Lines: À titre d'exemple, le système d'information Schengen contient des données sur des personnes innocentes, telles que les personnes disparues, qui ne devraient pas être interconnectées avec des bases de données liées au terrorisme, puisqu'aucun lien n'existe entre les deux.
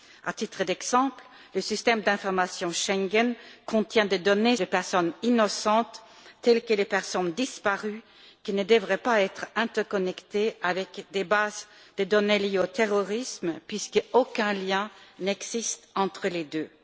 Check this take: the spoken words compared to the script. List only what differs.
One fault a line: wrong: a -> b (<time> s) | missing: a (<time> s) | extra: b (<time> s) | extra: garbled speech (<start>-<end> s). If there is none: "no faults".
missing: sur (4.5 s)